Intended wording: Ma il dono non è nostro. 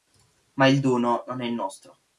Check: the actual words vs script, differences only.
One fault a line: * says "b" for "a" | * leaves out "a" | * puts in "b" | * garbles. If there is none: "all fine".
all fine